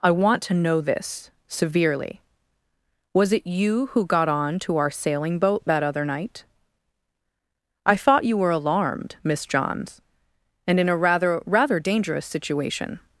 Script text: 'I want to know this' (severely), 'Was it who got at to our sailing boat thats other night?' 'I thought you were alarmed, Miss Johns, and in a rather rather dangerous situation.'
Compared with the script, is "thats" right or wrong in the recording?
wrong